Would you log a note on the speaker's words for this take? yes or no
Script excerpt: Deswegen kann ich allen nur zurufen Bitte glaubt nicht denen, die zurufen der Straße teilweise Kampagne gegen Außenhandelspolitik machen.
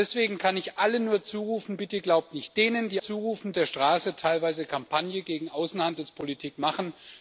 no